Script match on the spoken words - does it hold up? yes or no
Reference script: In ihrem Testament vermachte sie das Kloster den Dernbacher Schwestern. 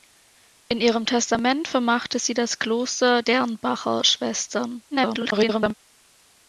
no